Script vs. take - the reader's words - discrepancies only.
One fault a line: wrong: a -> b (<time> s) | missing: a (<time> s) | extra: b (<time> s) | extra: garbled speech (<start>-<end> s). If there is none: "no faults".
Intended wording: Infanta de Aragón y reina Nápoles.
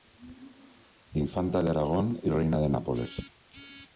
extra: de (2.6 s)